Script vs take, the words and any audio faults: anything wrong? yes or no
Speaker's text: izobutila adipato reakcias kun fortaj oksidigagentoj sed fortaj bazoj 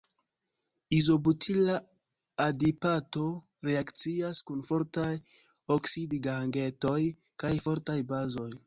yes